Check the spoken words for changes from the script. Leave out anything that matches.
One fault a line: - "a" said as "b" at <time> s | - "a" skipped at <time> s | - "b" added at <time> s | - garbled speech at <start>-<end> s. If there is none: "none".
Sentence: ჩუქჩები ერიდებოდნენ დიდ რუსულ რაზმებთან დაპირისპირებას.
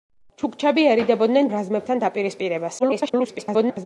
- "დიდ რუსულ" skipped at 1.5 s
- garbled speech at 2.8-3.9 s